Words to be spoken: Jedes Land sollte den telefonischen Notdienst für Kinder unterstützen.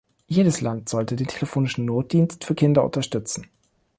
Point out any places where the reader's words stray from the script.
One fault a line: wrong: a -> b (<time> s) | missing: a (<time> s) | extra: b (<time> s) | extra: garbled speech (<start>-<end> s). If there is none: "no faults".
no faults